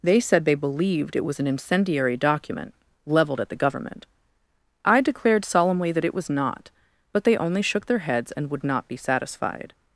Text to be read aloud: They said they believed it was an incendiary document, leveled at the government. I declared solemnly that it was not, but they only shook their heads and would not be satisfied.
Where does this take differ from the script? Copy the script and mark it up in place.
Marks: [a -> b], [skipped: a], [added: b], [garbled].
They said they believed it was an incendiary document, leveled at the government. I declared solemnly that it was not, but they only shook their heads and would not be satisfied.